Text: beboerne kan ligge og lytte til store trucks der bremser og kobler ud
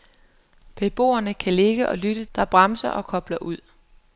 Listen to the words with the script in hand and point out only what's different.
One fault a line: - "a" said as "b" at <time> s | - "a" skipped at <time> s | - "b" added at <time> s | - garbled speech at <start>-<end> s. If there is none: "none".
- "til store trucks" skipped at 2.2 s